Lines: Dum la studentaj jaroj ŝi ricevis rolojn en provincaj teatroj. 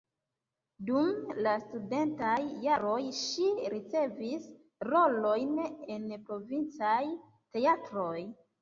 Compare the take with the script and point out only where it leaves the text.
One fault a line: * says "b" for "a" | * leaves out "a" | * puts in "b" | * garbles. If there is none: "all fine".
all fine